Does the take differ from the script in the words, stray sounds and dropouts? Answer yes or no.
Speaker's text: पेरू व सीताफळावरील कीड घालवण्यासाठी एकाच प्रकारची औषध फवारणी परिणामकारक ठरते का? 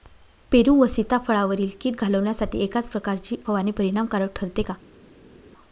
yes